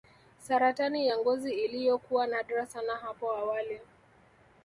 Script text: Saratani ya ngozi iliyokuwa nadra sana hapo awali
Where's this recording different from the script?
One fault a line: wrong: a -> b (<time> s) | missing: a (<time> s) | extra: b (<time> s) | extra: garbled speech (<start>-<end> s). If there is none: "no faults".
no faults